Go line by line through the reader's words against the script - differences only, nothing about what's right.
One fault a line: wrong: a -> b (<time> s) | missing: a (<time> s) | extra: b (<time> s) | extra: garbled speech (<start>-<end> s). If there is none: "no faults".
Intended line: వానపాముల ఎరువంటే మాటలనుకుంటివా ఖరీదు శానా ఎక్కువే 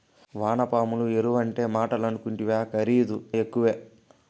missing: శానా (3.2 s)